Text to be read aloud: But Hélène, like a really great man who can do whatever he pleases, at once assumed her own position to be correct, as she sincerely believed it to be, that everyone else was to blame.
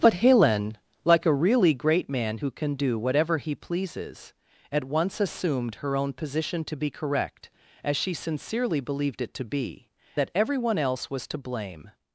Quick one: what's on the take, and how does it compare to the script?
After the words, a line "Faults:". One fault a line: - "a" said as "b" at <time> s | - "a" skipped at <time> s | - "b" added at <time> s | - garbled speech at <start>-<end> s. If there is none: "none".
But Hélène, like a really great man who can do whatever he pleases, at once assumed her own position to be correct, as she sincerely believed it to be, that everyone else was to blame.
Faults:
none